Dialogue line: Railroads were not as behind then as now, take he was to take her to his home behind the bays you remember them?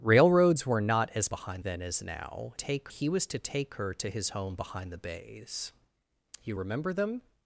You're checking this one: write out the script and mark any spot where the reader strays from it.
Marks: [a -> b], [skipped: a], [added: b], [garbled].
Railroads were not as behind then as now, take he was to take her to his home behind the bays you remember them?